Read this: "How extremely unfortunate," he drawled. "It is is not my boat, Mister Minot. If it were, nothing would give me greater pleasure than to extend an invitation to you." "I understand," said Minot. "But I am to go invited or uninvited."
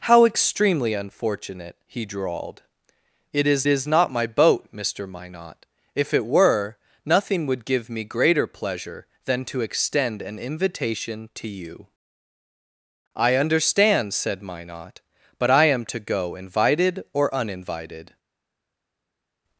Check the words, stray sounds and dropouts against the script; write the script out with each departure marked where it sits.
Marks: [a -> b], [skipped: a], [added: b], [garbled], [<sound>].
"How extremely unfortunate," he drawled. "It is is not my boat, Mister Minot. If it were, nothing would give me greater pleasure than to extend an invitation to you." "I understand," said Minot. "But I am to go invited or uninvited."